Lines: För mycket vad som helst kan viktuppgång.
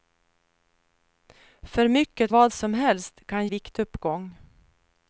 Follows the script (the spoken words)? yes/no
yes